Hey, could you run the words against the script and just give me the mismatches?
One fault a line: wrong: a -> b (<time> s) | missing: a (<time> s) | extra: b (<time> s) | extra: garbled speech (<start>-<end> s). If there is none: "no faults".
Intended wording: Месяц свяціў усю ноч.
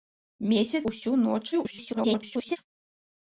missing: свяціў (0.8 s)
extra: garbled speech (1.5-2.6 s)